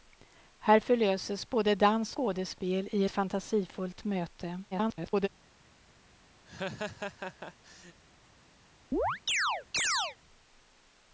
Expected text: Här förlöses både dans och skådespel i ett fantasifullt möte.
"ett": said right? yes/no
no